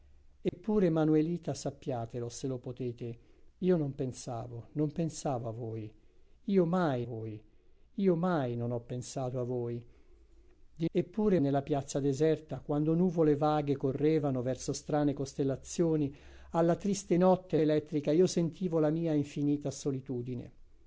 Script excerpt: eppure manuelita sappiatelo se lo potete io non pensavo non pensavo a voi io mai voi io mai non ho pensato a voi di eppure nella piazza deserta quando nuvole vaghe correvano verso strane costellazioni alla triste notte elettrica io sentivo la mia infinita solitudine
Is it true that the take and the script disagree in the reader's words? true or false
false